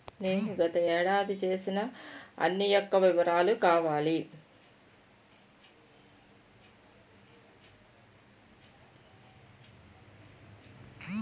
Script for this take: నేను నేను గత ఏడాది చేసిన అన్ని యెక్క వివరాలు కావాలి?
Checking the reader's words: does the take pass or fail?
fail